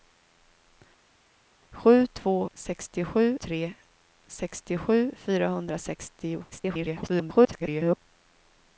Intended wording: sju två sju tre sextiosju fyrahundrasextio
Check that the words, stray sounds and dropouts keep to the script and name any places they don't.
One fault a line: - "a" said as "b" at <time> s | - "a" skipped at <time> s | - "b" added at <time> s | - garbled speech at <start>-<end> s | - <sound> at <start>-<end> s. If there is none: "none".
- "sju" said as "sextiosju" at 2.5 s
- garbled speech at 6.5-8.0 s